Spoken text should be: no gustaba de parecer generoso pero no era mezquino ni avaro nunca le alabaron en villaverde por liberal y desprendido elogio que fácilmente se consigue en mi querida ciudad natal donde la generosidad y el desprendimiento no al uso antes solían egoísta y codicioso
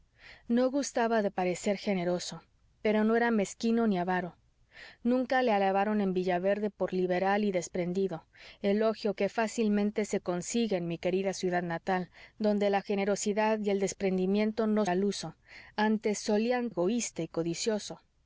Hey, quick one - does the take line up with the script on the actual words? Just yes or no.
yes